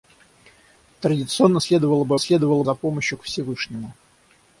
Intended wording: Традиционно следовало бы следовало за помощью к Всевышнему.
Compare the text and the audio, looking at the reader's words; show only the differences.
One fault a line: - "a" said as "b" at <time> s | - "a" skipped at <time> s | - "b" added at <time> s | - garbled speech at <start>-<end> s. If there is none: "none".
none